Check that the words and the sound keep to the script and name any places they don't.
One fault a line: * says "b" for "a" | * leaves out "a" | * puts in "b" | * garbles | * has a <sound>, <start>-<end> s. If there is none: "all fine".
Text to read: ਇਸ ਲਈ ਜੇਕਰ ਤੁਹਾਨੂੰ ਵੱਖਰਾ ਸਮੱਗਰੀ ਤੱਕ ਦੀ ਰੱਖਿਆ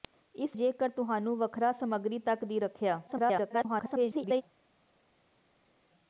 * leaves out "ਲਈ"
* garbles